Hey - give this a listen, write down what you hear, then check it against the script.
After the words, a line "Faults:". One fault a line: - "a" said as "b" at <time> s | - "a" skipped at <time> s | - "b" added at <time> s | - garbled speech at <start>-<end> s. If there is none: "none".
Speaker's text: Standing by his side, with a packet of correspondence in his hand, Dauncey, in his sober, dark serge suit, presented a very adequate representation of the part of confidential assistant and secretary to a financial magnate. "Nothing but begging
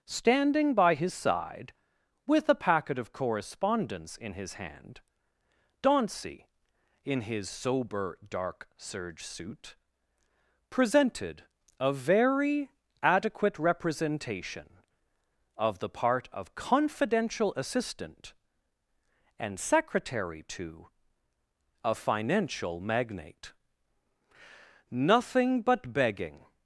Standing by his side, with a packet of correspondence in his hand, Dauncey, in his sober, dark serge suit, presented a very adequate representation of the part of confidential assistant and secretary to a financial magnate. "Nothing but begging
Faults:
none